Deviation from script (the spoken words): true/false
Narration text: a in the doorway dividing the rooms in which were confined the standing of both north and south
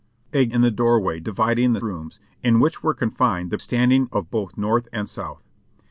false